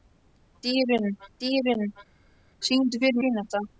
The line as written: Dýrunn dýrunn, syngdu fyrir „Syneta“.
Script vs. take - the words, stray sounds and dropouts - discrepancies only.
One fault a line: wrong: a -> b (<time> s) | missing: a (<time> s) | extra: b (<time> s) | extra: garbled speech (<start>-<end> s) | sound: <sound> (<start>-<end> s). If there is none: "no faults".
no faults